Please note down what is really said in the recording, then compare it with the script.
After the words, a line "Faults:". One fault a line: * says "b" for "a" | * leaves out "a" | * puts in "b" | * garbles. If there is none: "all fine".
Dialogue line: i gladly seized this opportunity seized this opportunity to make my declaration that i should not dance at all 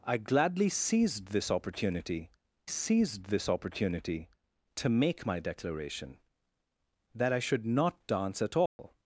i gladly seized this opportunity seized this opportunity to make my declaration that i should not dance at all
Faults:
all fine